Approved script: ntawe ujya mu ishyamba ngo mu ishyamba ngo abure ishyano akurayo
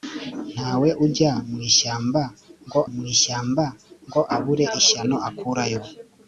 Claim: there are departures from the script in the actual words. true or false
false